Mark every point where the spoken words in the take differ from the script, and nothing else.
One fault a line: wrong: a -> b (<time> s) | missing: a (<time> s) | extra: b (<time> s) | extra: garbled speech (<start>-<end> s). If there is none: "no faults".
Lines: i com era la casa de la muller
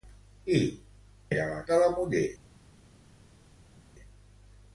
missing: com (0.6 s)
missing: casa (1.6 s)